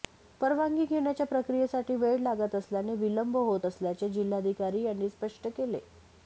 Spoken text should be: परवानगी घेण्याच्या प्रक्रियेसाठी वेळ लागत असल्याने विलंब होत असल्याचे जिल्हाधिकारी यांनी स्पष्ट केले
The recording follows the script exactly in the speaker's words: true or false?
true